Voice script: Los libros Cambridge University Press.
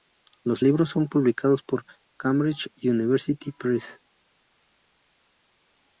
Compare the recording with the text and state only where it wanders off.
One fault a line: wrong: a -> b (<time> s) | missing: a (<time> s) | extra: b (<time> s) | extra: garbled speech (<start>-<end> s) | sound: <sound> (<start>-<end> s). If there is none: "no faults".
extra: son publicados por (0.9 s)